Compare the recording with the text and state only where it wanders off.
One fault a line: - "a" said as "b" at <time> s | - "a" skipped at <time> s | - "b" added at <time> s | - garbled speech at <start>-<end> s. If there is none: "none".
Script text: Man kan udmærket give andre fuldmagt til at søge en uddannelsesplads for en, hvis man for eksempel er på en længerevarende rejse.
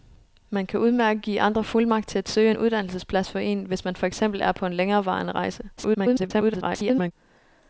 - garbled speech at 5.8-7.1 s